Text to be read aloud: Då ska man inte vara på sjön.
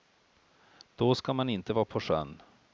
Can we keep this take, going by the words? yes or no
yes